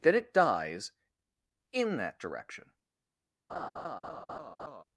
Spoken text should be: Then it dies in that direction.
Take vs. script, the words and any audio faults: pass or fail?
fail